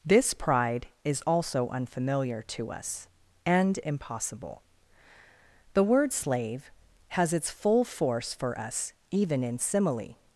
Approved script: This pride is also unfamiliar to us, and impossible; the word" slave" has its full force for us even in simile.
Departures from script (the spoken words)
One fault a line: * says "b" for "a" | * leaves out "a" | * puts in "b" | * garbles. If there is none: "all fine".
all fine